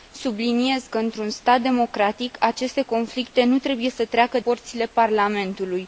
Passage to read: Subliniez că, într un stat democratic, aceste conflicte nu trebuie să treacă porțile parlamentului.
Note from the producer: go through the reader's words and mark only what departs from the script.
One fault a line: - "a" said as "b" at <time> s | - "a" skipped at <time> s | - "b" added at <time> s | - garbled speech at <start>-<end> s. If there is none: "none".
none